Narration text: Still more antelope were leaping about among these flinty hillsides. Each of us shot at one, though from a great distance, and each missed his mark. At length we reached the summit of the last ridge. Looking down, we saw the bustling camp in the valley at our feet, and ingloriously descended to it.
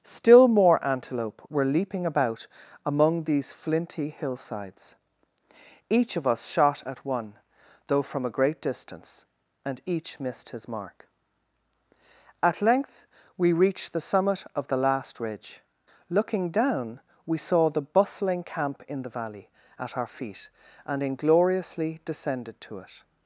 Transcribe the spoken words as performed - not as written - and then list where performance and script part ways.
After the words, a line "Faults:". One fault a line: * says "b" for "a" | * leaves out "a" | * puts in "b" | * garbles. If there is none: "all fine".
Still more antelope were leaping about among these flinty hillsides. Each of us shot at one, though from a great distance, and each missed his mark. At length we reached the summit of the last ridge. Looking down, we saw the bustling camp in the valley at our feet, and ingloriously descended to it.
Faults:
all fine